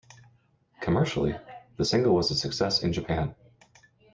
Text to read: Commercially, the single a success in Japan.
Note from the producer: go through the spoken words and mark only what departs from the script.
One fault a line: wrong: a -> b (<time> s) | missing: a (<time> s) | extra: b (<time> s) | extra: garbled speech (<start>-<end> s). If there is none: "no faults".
extra: was (2.2 s)